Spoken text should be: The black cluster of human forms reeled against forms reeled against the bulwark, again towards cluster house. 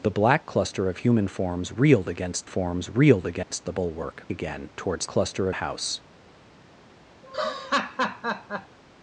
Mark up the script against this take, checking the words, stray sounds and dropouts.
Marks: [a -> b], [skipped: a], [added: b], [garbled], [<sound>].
The black cluster of human forms reeled against forms reeled against [dropout] the bulwark, again towards cluster house. [laugh]